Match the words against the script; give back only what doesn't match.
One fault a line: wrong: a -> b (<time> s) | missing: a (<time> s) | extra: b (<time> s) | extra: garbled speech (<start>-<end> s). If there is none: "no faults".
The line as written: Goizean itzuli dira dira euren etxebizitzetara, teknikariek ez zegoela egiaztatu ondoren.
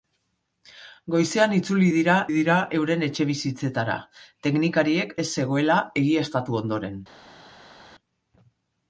no faults